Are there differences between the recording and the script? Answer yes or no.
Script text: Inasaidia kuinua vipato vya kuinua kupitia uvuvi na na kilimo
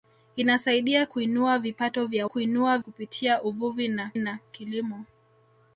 no